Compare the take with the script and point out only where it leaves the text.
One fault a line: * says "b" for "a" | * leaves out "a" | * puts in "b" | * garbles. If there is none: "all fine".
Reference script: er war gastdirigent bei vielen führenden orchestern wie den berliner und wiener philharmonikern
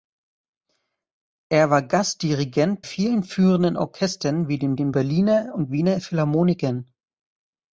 * leaves out "bei"
* puts in "den"